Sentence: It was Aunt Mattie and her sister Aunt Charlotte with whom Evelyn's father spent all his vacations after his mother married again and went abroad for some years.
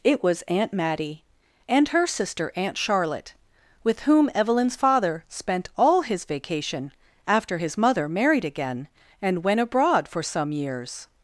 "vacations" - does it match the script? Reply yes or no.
no